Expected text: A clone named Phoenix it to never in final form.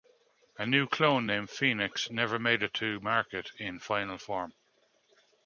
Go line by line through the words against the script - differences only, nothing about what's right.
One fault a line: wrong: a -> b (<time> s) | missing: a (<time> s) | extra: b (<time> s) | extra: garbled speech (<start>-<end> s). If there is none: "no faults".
extra: new (0.7 s)
extra: never made (2.1 s)
wrong: never -> market (3.0 s)